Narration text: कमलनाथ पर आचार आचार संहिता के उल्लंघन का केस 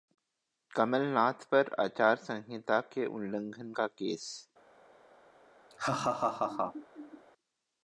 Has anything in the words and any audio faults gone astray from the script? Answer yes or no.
yes